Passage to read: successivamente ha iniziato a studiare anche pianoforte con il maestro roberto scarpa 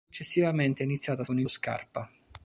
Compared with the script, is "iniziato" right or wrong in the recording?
right